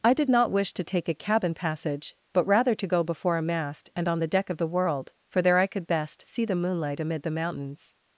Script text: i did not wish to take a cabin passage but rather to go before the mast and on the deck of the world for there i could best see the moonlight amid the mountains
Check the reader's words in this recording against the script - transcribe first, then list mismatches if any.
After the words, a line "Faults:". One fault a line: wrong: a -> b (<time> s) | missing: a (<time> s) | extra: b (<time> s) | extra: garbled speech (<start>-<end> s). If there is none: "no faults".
i did not wish to take a cabin passage but rather to go before a mast and on the deck of the world for there i could best see the moonlight amid the mountains
Faults:
wrong: the -> a (3.4 s)